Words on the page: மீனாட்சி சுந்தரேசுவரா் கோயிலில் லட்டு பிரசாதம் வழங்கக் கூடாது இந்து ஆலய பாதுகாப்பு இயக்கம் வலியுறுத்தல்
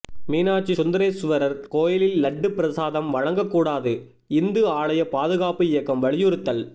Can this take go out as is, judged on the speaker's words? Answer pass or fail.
pass